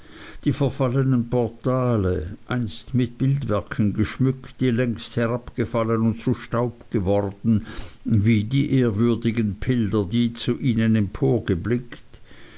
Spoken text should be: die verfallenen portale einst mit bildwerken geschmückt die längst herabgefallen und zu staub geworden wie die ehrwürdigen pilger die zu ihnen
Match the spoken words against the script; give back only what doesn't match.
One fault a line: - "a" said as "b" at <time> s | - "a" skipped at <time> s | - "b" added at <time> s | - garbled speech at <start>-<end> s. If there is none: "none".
none